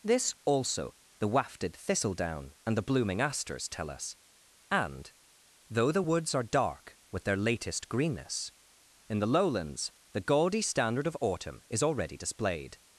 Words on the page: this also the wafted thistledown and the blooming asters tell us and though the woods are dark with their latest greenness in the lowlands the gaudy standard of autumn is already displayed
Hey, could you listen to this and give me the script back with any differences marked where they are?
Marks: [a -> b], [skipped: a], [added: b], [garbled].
this also the wafted thistledown and the blooming asters tell us and though the woods are dark with their latest greenness in the lowlands the gaudy standard of autumn is already displayed